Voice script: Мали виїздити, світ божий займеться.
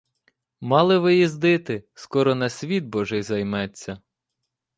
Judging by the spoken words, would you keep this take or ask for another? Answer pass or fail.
fail